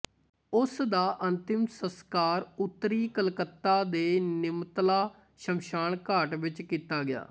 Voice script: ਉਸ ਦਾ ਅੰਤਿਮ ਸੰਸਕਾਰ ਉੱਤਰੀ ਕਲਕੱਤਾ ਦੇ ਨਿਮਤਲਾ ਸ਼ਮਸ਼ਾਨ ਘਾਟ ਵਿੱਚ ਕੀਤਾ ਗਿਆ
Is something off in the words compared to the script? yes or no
no